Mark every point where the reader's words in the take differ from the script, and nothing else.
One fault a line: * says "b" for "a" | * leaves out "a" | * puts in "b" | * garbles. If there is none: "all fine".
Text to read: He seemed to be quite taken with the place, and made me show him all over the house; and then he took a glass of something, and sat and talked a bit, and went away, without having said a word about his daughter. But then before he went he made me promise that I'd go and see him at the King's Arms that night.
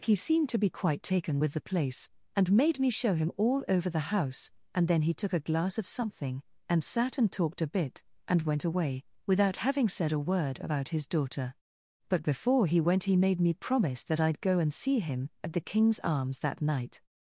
* leaves out "then"